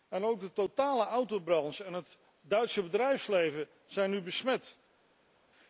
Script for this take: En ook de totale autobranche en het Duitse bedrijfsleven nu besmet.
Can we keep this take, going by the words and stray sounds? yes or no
no